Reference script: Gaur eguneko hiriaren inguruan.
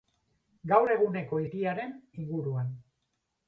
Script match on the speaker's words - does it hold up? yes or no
yes